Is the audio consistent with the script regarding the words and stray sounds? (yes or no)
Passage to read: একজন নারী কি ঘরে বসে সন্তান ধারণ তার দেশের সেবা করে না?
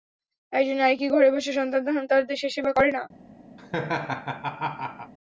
no